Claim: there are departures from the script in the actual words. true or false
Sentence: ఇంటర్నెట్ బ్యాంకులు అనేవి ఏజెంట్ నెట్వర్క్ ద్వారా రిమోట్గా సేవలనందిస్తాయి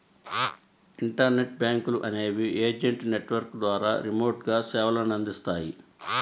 false